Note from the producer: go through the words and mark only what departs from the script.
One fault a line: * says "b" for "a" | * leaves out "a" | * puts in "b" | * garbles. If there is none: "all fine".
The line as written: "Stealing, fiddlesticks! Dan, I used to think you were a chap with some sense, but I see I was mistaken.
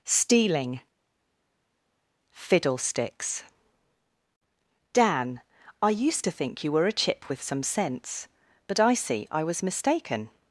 * says "chip" for "chap"